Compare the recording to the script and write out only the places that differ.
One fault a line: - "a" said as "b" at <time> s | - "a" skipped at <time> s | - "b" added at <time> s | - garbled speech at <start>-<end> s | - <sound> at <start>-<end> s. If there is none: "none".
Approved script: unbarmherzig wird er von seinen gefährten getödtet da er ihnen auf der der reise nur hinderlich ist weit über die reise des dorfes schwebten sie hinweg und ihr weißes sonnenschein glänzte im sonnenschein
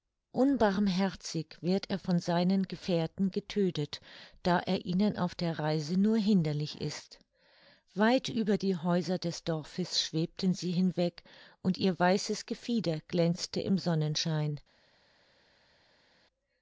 - "der" skipped at 5.6 s
- "reise" said as "häuser" at 8.8 s
- "sonnenschein" said as "gefieder" at 12.5 s